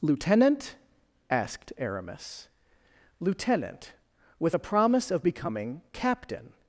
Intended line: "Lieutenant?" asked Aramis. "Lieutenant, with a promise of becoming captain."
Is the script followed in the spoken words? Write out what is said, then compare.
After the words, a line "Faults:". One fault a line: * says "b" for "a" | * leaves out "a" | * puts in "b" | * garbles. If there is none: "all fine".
"Lieutenant?" asked Aramis. "Lieutenant, with a promise of becoming captain."
Faults:
all fine